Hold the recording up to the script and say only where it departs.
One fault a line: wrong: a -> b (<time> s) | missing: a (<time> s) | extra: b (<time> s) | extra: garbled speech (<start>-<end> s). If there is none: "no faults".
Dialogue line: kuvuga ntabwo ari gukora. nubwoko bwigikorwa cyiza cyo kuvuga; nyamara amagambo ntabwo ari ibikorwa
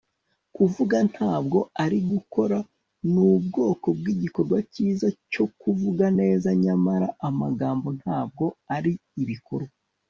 extra: neza (6.2 s)